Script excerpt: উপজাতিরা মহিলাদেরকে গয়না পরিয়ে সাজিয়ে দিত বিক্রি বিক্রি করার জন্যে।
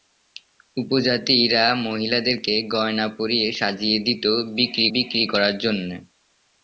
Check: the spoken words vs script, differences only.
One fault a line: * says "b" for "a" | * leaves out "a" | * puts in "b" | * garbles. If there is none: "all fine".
all fine